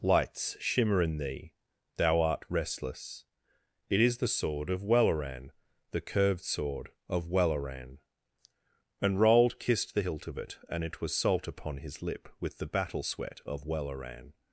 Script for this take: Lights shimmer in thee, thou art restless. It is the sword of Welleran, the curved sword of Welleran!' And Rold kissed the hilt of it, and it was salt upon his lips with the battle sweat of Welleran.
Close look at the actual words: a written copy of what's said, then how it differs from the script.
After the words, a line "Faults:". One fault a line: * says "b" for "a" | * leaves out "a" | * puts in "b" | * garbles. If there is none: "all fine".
Lights shimmer in thee, thou art restless. It is the sword of Welleran, the curved sword of Welleran!' And Rold kissed the hilt of it, and it was salt upon his lip with the battle sweat of Welleran.
Faults:
* says "lip" for "lips"